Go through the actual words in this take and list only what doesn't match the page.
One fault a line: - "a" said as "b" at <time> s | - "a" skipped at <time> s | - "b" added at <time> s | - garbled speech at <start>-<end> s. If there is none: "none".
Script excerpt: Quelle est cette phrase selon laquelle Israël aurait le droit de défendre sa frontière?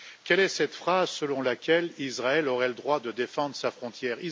none